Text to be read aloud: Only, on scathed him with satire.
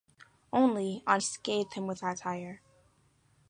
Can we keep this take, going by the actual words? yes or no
yes